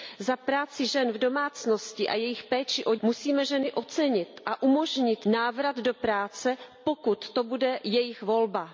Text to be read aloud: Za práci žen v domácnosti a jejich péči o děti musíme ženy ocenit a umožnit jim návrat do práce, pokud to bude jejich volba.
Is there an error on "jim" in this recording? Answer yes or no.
yes